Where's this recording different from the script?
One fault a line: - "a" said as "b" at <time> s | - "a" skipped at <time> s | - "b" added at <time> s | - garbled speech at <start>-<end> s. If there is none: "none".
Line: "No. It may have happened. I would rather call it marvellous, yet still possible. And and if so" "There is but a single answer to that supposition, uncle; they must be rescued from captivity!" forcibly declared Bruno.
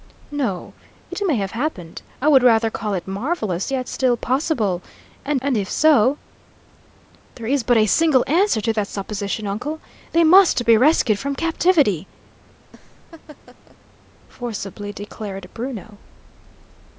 none